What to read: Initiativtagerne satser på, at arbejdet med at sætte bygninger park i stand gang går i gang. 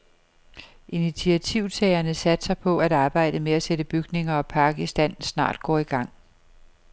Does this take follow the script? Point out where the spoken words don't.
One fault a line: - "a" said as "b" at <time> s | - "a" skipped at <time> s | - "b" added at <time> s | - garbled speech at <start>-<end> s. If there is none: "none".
- "og" added at 4.3 s
- "gang" said as "snart" at 5.2 s